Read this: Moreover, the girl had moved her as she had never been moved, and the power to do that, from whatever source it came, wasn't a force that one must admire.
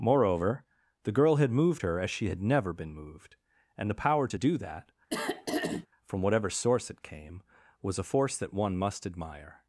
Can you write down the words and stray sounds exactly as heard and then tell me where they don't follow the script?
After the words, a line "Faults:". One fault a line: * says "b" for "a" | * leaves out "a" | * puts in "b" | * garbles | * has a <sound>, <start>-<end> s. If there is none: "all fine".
Moreover, the girl had moved her as she had never been moved, and the power to do that, from whatever source it came, was a force that one must admire.
Faults:
* has a throat clearing, 5.1-5.9 s
* says "was" for "wasn't"